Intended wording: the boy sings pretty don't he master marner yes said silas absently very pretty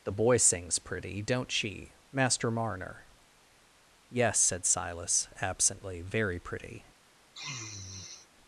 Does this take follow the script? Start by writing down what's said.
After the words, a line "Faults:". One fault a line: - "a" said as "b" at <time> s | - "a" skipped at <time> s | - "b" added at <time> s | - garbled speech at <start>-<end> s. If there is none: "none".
the boy sings pretty don't she master marner yes said silas absently very pretty
Faults:
- "he" said as "she" at 1.5 s